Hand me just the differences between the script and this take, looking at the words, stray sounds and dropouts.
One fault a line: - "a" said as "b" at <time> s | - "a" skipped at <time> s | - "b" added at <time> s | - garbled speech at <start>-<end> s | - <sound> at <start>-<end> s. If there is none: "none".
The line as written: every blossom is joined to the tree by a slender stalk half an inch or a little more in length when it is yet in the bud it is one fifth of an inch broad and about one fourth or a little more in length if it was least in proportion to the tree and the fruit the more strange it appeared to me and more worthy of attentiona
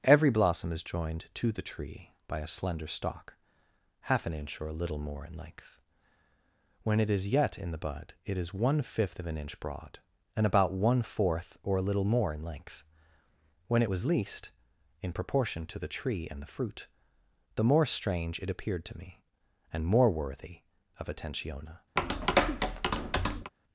- "if" said as "when" at 13.7 s
- tap at 22.0-23.5 s